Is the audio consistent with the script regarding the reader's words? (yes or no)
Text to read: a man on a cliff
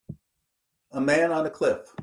yes